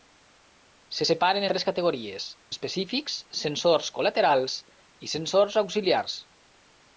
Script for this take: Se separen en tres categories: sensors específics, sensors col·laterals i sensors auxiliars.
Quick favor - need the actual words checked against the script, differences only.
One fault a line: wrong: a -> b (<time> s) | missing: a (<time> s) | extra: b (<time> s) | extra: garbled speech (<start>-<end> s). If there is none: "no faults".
missing: en (1.5 s)
missing: sensors (2.3 s)